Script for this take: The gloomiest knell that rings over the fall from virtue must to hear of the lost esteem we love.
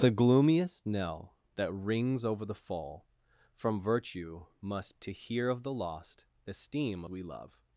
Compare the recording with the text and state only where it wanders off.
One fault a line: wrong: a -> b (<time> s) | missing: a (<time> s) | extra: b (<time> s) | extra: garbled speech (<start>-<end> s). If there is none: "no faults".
no faults